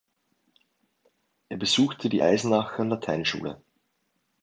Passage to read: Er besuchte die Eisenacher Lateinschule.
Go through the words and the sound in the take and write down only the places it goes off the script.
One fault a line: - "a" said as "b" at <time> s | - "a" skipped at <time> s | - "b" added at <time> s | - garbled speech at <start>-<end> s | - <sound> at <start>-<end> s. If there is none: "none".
none